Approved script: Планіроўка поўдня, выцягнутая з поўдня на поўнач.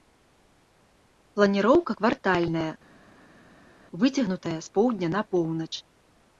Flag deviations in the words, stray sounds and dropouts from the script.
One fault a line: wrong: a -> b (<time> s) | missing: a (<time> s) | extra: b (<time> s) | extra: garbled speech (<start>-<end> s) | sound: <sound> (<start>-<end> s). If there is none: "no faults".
wrong: поўдня -> квартальная (2.0 s)